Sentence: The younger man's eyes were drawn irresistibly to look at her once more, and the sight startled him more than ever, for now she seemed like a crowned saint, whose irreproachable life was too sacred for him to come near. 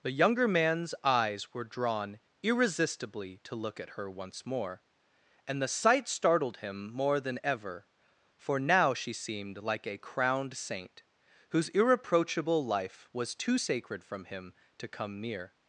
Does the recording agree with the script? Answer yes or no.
no